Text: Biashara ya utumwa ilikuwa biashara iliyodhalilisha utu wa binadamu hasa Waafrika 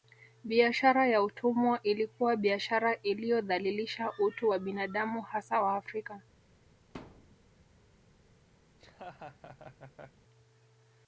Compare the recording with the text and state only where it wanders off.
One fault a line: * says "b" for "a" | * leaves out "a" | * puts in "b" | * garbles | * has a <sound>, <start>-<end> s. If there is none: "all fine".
* has a thud, 6.9-7.4 s
* has a laugh, 8.7-10.2 s